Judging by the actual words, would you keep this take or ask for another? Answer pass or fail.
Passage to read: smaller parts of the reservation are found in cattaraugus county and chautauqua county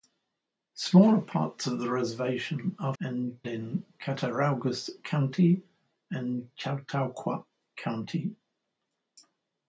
fail